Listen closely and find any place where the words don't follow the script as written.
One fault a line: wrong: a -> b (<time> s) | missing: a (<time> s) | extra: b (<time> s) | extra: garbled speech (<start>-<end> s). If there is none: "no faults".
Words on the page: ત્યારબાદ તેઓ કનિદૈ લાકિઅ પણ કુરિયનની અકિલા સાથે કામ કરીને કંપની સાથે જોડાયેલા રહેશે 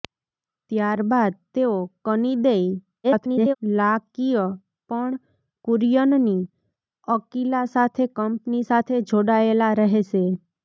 extra: garbled speech (3.0-3.6 s)
missing: કામ કરીને (8.1 s)